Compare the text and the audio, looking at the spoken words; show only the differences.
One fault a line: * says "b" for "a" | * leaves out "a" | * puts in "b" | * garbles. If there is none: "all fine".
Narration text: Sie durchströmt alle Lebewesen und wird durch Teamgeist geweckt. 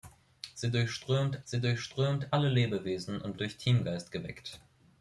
* puts in "sie durchströmt"
* leaves out "wird"